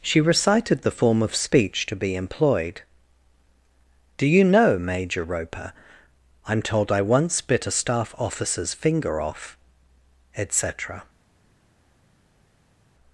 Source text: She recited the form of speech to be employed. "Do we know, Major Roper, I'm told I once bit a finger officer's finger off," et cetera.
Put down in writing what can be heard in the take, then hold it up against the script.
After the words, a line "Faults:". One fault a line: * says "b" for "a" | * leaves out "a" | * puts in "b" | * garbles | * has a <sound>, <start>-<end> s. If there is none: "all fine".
She recited the form of speech to be employed. "Do you know, Major Roper, I'm told I once bit a staff officer's finger off," et cetera.
Faults:
* says "you" for "we"
* says "staff" for "finger"